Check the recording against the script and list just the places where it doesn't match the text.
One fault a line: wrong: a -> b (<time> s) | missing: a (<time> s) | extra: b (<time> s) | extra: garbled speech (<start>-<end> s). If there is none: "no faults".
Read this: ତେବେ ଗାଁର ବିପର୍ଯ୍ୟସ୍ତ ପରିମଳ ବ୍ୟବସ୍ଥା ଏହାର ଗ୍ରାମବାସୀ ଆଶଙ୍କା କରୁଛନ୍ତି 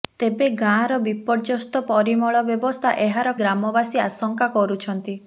no faults